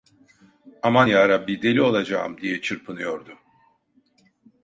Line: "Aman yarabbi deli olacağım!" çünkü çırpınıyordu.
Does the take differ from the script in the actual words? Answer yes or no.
yes